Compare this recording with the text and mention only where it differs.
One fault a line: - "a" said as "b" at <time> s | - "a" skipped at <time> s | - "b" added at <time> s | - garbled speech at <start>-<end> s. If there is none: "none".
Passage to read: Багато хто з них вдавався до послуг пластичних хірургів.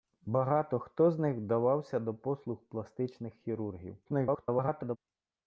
- garbled speech at 4.1-5.0 s